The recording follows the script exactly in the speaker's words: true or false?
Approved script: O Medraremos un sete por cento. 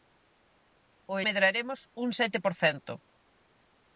true